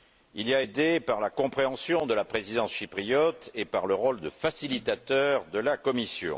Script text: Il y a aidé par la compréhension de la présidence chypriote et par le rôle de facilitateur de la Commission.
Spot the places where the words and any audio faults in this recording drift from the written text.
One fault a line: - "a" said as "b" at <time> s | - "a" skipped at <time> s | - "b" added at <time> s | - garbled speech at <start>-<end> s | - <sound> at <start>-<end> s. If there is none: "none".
none